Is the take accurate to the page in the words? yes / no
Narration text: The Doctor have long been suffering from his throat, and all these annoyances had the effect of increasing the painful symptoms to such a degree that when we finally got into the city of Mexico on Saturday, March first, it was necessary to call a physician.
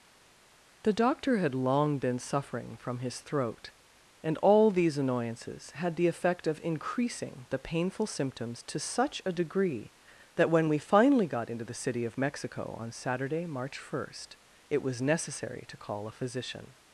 no